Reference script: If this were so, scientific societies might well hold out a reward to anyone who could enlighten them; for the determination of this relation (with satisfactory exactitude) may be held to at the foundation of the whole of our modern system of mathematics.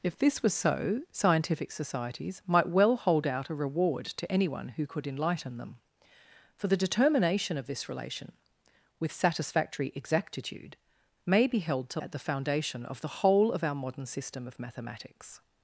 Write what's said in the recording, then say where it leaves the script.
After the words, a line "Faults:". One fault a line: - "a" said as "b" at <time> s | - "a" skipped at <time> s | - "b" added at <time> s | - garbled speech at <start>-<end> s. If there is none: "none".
If this were so, scientific societies might well hold out a reward to anyone who could enlighten them; for the determination of this relation (with satisfactory exactitude) may be held to at the foundation of the whole of our modern system of mathematics.
Faults:
none